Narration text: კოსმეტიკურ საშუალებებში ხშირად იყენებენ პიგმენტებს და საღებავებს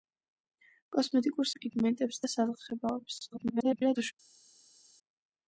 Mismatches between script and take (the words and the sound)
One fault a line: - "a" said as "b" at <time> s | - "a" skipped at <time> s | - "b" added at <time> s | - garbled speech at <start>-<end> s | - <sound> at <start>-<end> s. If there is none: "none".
- "საშუალებებში ხშირად იყენებენ" skipped at 1.5 s
- garbled speech at 3.3-4.1 s